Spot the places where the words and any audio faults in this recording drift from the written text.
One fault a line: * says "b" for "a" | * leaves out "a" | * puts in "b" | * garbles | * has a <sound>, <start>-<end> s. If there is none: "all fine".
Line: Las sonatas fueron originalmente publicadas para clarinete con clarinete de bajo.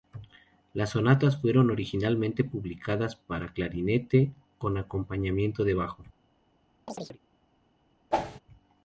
* says "acompañamiento" for "clarinete"
* has a chirp, 6.9-7.2 s
* has a whoosh, 8.1-8.4 s